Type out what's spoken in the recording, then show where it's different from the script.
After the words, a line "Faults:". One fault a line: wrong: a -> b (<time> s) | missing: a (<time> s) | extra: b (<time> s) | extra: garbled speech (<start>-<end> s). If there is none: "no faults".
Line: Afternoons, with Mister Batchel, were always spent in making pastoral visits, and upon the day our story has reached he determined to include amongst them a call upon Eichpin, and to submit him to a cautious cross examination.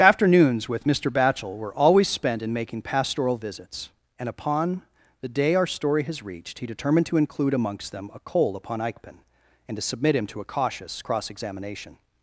Afternoons, with Mister Batchel, were always spent in making pastoral visits, and upon the day our story has reached he determined to include amongst them a coal upon Eichpin, and to submit him to a cautious cross examination.
Faults:
wrong: call -> coal (8.2 s)